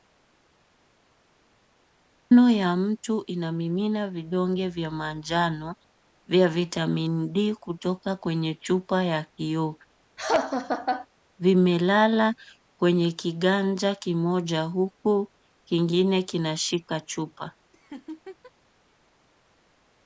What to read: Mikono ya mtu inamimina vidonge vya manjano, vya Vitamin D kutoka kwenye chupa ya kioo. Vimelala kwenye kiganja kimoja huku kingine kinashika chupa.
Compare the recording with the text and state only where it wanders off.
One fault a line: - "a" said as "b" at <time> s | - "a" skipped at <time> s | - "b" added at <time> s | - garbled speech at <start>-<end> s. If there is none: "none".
none